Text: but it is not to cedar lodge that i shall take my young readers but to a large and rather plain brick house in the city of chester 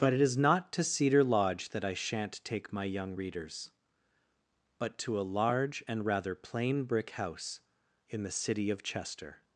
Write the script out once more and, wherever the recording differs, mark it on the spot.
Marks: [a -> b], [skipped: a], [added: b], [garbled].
but it is not to cedar lodge that i [shall -> shan't] take my young readers but to a large and rather plain brick house in the city of chester